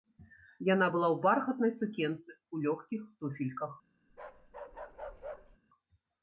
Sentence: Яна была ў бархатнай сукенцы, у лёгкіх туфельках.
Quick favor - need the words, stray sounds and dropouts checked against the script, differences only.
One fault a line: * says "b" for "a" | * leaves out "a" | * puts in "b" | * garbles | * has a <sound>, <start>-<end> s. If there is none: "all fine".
* has a bark, 4.1-5.6 s